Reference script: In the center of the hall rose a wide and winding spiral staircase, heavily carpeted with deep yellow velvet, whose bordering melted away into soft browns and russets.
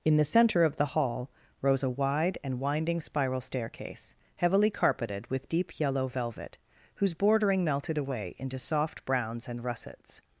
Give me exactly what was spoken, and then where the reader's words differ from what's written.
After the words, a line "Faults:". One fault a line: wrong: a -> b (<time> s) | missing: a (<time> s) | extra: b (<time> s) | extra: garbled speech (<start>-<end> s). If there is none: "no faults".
In the center of the hall rose a wide and winding spiral staircase, heavily carpeted with deep yellow velvet, whose bordering melted away into soft browns and russets.
Faults:
no faults